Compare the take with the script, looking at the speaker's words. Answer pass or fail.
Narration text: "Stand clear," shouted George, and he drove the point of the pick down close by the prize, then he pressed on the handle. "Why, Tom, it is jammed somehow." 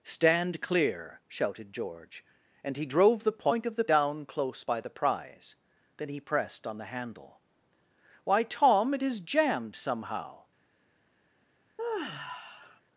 fail